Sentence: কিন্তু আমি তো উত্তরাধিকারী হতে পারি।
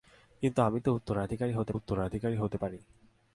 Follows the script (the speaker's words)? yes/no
no